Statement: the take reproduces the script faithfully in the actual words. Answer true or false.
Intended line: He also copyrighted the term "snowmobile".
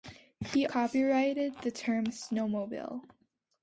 false